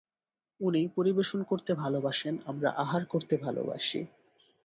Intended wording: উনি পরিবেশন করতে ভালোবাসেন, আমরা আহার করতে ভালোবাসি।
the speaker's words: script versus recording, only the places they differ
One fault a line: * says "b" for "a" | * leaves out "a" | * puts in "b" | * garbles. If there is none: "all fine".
all fine